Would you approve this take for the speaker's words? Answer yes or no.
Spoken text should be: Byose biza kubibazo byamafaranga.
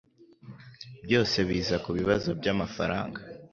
yes